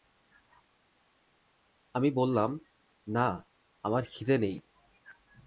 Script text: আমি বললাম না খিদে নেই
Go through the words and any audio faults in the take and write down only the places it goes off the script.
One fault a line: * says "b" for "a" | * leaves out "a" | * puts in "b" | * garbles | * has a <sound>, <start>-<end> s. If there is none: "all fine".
* puts in "আমার"